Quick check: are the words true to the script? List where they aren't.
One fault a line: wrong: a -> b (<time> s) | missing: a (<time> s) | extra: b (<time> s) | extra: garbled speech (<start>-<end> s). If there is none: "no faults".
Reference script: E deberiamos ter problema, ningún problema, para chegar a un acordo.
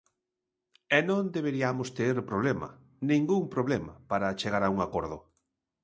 extra: non (1.1 s)